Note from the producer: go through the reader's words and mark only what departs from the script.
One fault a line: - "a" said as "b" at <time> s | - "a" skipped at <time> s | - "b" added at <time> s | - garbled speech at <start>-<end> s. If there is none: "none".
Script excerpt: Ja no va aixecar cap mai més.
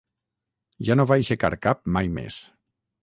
none